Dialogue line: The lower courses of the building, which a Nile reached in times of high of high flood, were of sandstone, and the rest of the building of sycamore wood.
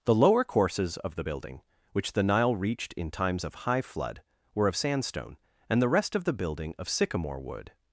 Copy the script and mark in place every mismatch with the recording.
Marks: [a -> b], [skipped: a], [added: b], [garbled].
The lower courses of the building, which [a -> the] Nile reached in times of high [skipped: of high] flood, were of sandstone, and the rest of the building of sycamore wood.